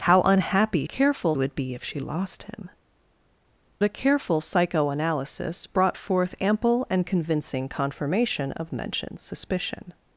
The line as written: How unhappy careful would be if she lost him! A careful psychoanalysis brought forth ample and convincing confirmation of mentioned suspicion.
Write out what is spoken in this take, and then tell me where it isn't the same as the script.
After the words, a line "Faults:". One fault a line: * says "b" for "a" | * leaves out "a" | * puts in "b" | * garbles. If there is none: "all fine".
How unhappy careful would be if she lost him! A careful psychoanalysis brought forth ample and convincing confirmation of mentioned suspicion.
Faults:
all fine